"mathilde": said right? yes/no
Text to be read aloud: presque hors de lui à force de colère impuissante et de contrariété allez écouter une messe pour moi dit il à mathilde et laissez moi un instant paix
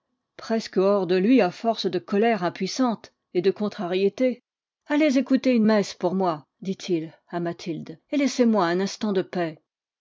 yes